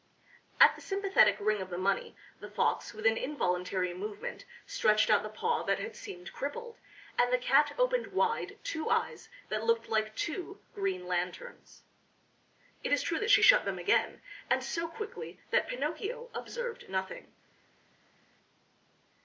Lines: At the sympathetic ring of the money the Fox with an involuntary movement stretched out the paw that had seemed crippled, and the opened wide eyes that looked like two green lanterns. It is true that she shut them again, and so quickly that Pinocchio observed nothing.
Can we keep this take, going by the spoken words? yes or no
no